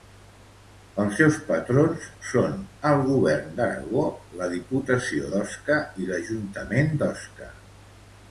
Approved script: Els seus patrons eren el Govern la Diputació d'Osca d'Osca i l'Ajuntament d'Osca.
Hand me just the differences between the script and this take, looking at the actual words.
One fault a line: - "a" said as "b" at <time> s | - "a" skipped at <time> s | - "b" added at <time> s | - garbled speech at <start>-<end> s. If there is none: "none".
- "eren" said as "són" at 2.3 s
- "d'Aragó" added at 3.6 s
- "d'Osca" skipped at 5.8 s